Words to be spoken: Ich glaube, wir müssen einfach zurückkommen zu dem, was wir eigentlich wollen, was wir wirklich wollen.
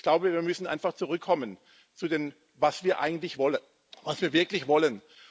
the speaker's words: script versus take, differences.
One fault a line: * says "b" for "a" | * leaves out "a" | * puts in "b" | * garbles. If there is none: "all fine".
all fine